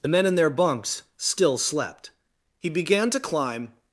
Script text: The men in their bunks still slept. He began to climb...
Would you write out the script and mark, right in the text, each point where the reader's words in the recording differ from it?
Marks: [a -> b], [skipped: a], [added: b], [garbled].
The men in their bunks still slept. He began to climb...